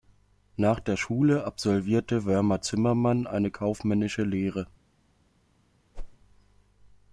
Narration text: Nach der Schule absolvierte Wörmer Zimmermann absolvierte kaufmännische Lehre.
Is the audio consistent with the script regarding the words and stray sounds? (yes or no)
no